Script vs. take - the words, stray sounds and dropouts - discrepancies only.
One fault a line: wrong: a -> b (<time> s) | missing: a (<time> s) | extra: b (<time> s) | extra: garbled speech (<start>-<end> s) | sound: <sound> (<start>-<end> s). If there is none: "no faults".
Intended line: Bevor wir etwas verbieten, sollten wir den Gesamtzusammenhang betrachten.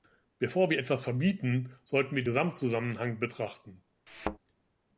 missing: den (2.2 s)
sound: thud (4.1-4.4 s)